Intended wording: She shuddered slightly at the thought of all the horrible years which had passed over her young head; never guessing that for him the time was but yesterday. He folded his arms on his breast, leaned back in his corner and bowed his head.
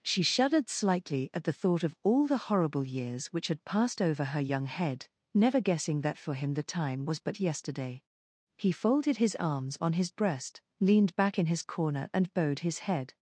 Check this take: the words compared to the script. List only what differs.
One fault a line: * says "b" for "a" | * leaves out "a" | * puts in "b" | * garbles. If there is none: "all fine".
all fine